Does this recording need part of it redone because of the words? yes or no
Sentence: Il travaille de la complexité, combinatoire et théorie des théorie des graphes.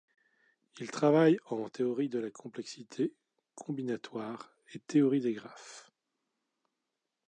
yes